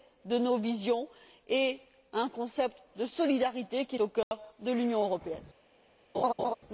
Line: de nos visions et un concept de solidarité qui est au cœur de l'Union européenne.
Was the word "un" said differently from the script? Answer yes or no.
no